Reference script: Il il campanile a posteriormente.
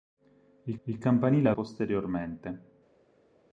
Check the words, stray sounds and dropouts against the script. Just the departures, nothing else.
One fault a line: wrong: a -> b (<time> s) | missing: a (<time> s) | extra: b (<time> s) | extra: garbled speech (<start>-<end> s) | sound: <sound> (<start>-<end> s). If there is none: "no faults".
no faults